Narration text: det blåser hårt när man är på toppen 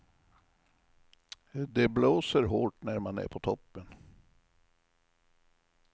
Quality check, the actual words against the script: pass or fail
pass